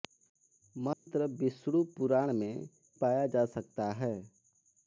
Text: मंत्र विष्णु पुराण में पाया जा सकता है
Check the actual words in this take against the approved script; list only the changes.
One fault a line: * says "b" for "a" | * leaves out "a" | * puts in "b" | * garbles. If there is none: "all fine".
all fine